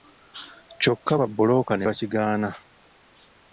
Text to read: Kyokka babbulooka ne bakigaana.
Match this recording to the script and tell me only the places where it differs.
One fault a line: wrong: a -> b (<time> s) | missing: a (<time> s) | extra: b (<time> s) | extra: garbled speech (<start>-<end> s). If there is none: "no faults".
no faults